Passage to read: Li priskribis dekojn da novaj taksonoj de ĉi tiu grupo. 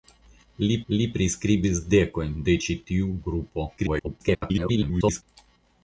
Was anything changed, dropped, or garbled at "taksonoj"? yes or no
yes